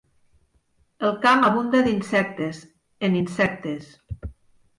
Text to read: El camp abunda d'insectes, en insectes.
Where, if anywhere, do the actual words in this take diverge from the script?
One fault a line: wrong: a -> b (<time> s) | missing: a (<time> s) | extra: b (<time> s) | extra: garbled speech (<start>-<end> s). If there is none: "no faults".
no faults